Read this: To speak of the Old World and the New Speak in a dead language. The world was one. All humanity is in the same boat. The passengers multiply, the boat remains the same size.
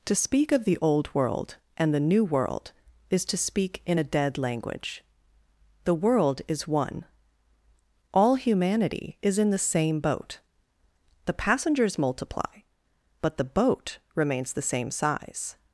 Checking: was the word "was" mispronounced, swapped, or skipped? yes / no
yes